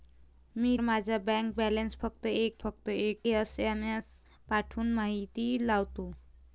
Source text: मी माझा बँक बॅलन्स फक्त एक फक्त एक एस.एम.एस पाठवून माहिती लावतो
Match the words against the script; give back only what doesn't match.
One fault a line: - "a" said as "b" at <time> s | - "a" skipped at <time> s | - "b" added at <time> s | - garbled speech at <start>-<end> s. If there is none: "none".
none